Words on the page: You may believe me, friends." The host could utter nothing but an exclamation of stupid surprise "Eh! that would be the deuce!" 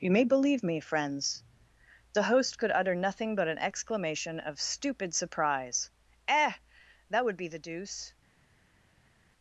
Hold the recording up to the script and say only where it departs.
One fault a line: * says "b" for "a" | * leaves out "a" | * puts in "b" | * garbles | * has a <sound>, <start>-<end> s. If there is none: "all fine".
all fine